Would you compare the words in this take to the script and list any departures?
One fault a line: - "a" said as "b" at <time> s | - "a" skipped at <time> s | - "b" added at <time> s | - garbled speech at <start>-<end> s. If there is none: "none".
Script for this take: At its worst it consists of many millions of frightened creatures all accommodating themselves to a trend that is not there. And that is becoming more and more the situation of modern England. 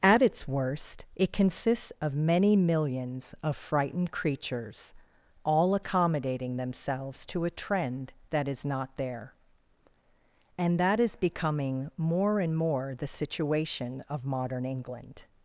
none